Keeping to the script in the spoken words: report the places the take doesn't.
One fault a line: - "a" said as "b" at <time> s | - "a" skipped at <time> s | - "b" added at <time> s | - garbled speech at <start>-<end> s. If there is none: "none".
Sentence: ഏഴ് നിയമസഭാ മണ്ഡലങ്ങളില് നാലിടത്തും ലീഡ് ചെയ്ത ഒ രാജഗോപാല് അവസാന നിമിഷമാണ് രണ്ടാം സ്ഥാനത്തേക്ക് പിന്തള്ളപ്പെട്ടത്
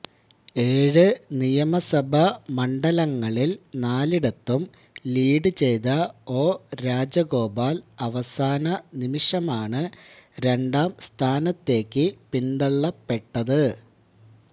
none